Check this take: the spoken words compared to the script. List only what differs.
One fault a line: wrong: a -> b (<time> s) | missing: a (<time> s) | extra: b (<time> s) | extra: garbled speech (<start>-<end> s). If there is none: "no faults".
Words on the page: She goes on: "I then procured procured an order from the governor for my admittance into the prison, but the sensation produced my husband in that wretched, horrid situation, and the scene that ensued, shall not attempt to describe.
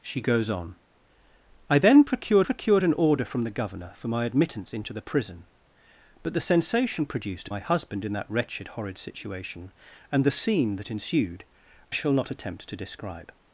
no faults